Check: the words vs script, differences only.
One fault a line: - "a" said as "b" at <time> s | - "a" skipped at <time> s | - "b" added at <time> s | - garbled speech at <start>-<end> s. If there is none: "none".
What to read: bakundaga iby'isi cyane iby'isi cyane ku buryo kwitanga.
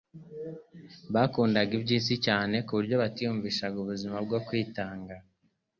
- "iby'isi cyane ku buryo" said as "ku buryo batiyumvishaga ubuzima bwo" at 2.6 s